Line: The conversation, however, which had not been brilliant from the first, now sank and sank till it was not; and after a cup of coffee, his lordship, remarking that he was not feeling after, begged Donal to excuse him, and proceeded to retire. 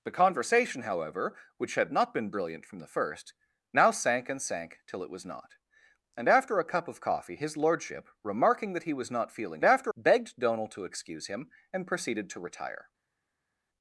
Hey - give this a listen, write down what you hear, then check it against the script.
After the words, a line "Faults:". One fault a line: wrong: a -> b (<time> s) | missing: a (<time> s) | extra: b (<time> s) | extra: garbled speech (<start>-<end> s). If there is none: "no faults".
The conversation, however, which had not been brilliant from the first, now sank and sank till it was not; and after a cup of coffee, his lordship, remarking that he was not feeling after, begged Donal to excuse him, and proceeded to retire.
Faults:
no faults